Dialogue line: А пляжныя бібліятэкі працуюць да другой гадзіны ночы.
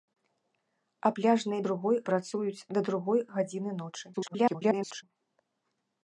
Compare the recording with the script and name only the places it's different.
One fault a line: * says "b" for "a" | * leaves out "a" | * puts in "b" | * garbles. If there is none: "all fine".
* says "другой" for "бібліятэкі"
* garbles